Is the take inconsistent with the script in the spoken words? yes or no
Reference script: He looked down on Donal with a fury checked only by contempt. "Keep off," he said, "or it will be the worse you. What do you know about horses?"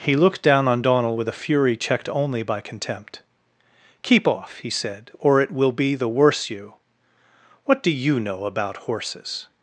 no